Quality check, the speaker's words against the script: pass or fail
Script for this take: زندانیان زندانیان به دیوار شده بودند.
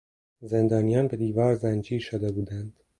fail